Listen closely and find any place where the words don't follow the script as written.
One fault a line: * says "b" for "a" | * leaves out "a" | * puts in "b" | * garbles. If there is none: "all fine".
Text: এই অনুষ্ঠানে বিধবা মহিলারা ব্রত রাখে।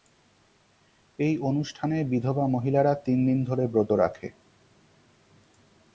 * puts in "তিন দিন ধরে"